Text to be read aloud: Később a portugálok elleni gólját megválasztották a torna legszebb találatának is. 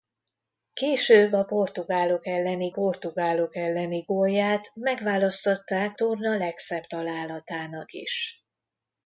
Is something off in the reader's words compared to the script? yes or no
yes